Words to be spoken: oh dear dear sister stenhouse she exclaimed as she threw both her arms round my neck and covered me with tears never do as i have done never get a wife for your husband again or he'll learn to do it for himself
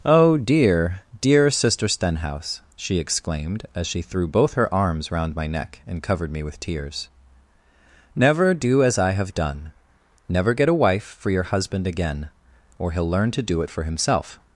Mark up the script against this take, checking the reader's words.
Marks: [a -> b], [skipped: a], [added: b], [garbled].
oh dear dear sister stenhouse she exclaimed as she threw both her arms round my neck and covered me with tears never do as i have done never get a wife for your husband again or he'll learn to do it for himself